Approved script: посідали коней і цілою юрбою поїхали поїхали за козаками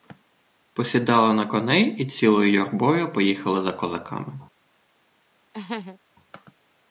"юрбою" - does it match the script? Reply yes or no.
yes